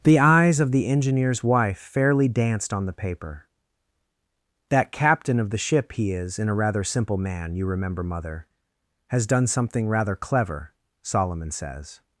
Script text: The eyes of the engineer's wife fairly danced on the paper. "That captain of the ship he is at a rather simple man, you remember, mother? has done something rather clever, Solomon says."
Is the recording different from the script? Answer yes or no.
yes